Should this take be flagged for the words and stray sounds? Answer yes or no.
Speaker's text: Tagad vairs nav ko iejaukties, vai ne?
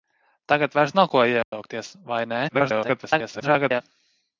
yes